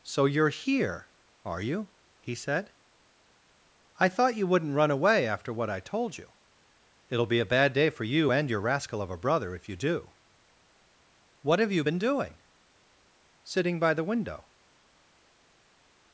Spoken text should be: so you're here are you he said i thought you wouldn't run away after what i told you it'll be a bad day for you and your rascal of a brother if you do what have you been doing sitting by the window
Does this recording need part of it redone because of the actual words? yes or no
no